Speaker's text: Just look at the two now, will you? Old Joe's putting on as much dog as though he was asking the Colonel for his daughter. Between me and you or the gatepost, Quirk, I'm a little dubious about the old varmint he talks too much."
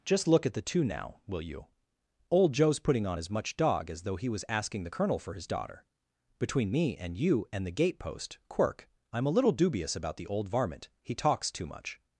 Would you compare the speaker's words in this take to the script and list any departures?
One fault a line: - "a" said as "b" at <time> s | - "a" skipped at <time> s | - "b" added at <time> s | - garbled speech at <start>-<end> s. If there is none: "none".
- "or" said as "and" at 7.5 s